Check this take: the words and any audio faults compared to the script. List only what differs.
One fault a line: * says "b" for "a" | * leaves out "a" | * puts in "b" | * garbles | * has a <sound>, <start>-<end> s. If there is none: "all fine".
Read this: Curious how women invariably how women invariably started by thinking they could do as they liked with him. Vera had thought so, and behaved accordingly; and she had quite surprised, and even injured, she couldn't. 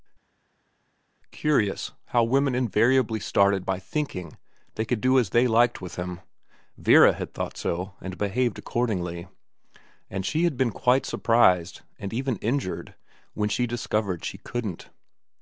* leaves out "how women invariably"
* puts in "been"
* puts in "when she discovered"